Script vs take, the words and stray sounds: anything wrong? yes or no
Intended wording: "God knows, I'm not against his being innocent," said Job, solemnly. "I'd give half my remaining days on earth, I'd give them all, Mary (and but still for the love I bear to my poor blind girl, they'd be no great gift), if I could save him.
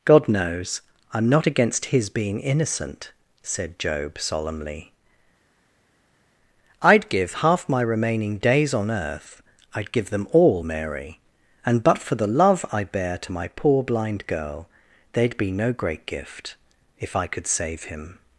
yes